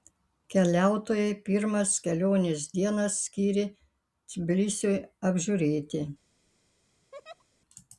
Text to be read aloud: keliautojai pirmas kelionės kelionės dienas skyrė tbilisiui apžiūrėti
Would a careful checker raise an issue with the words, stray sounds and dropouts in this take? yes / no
yes